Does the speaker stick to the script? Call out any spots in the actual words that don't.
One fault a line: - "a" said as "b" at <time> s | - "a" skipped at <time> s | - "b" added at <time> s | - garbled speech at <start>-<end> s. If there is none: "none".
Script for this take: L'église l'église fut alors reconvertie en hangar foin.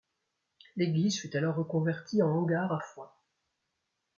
- "l'église" skipped at 1.2 s
- "à" added at 2.7 s